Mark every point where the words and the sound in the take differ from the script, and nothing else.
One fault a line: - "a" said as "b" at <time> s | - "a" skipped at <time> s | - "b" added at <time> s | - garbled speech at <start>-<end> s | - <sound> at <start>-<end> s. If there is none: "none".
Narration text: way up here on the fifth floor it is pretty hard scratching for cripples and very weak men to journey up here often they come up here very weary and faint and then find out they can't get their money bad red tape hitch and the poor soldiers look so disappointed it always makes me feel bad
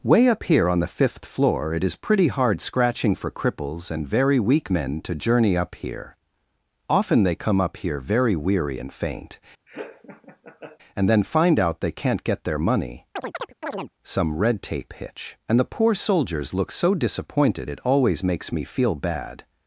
- laugh at 9.7-10.8 s
- chirp at 13.2-13.9 s
- "bad" said as "some" at 14.0 s